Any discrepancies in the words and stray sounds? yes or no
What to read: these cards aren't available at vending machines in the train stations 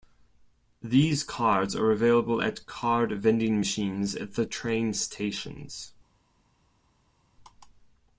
yes